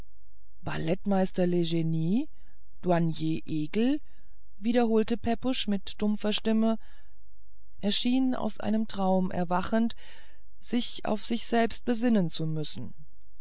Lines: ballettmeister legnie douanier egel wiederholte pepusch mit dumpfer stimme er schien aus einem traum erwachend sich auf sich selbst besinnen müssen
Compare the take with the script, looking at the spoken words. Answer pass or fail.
fail